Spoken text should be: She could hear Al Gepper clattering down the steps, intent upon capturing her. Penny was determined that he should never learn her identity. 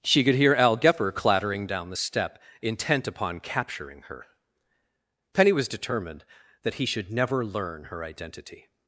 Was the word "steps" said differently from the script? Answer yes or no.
yes